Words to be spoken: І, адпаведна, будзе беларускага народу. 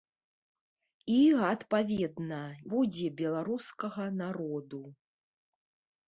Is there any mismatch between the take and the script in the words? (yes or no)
no